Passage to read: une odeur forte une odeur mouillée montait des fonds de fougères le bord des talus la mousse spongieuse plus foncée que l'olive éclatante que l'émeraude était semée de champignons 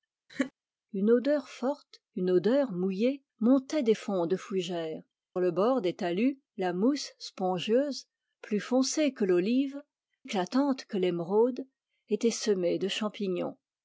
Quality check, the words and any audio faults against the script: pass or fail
fail